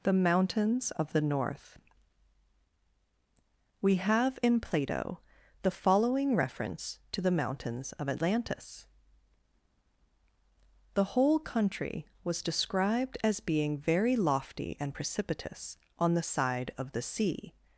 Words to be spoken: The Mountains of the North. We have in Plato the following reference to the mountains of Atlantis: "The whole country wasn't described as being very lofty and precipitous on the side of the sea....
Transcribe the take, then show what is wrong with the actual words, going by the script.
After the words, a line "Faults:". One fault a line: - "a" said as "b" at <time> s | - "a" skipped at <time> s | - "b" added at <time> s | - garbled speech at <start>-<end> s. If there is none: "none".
The Mountains of the North. We have in Plato the following reference to the mountains of Atlantis: "The whole country was described as being very lofty and precipitous on the side of the sea....
Faults:
- "wasn't" said as "was" at 12.2 s